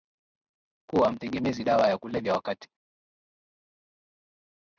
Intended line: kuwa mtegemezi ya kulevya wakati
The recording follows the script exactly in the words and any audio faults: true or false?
false